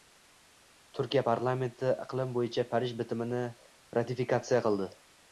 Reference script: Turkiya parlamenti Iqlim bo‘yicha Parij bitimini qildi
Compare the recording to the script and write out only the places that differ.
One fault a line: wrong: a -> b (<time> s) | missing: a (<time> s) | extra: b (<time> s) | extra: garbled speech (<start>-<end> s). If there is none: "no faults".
extra: ratifikatsiya (4.0 s)